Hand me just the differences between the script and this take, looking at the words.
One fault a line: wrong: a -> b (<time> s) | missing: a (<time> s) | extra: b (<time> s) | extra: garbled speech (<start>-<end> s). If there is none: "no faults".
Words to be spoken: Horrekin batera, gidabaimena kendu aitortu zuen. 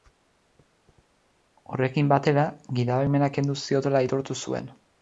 extra: ziotela (3.7 s)